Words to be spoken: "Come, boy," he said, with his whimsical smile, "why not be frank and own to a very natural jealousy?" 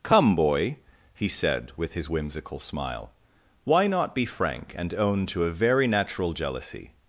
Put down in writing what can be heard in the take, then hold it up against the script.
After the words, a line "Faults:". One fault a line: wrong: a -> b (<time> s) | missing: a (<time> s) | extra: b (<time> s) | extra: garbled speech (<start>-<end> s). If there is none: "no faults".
"Come, boy," he said, with his whimsical smile, "why not be frank and own to a very natural jealousy?"
Faults:
no faults